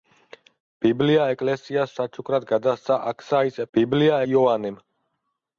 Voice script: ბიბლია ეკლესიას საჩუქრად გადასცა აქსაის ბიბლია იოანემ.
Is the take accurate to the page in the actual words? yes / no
yes